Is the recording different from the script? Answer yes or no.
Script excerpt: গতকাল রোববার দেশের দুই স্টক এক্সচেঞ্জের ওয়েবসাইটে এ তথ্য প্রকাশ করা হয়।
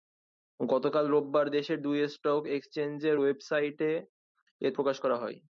yes